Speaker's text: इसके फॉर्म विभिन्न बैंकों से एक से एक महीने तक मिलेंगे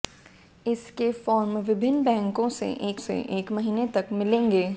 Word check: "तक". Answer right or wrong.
right